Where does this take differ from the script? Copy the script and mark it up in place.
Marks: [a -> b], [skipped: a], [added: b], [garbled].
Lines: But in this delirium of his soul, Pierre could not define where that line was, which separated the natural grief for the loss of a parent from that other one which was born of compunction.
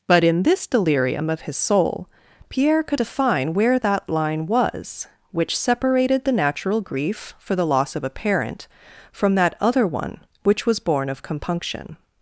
But in this delirium of his soul, Pierre could [skipped: not] define where that line was, which separated the natural grief for the loss of a parent from that other one which was born of compunction.